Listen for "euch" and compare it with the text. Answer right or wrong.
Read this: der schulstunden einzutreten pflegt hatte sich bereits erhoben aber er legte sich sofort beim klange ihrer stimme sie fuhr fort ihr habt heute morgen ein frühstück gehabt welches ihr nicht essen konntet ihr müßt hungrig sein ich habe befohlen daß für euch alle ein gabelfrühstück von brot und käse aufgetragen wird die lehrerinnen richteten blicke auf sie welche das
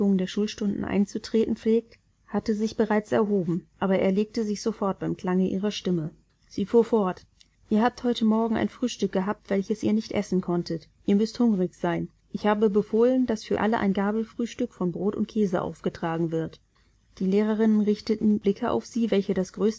wrong